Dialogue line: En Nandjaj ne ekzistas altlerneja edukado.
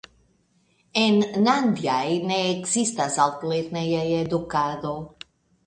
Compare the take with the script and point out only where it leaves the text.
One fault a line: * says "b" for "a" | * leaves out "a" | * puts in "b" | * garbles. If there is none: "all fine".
all fine